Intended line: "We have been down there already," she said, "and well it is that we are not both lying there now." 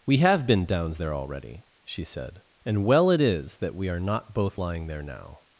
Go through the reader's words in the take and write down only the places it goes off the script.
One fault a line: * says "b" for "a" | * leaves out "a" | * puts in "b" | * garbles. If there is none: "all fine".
* says "downs" for "down"